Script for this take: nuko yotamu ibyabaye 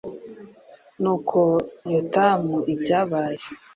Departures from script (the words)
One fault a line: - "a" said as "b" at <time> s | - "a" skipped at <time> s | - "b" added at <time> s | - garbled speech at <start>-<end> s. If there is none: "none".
none